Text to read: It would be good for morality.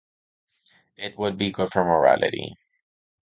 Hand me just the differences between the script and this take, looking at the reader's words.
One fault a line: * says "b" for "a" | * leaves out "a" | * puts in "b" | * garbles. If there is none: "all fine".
all fine